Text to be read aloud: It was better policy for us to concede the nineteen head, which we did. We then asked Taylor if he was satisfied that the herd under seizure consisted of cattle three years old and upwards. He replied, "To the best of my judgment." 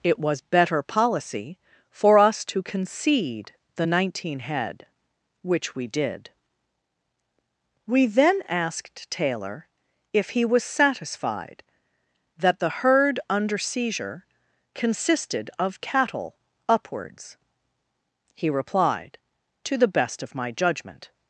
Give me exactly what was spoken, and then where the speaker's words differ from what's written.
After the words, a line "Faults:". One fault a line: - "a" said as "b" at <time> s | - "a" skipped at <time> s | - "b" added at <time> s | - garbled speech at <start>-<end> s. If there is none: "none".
It was better policy for us to concede the nineteen head, which we did. We then asked Taylor if he was satisfied that the herd under seizure consisted of cattle upwards. He replied, "To the best of my judgment."
Faults:
- "three years old and" skipped at 16.4 s